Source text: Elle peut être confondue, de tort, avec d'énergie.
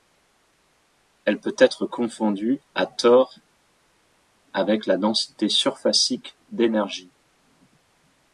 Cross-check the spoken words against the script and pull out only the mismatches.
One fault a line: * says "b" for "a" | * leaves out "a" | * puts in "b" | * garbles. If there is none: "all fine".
* says "à" for "de"
* puts in "la densité surfacique"